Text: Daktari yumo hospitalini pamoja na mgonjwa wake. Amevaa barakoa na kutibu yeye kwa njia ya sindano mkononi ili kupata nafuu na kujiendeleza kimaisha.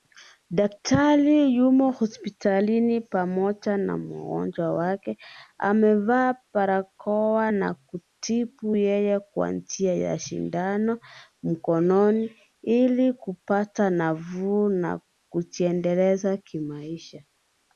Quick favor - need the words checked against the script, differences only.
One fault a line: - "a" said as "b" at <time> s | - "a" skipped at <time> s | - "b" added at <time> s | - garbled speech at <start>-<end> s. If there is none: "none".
none